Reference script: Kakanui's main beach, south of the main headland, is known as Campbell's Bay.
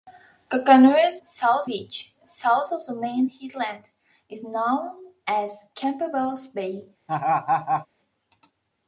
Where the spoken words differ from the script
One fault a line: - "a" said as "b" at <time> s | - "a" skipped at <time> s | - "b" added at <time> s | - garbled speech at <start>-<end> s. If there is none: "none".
- "main" said as "south" at 1.2 s